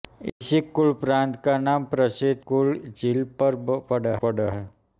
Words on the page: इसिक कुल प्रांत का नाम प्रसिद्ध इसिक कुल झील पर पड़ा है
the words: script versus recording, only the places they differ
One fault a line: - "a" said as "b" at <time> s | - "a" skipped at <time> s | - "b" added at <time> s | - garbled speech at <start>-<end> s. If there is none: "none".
- "इसिक" skipped at 2.5 s
- "पड़ा" added at 4.2 s